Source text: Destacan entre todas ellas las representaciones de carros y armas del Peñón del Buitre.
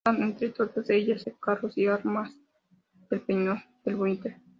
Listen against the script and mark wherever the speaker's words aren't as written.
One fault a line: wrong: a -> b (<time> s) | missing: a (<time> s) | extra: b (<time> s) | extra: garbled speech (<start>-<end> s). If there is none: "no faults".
missing: las representaciones (1.3 s)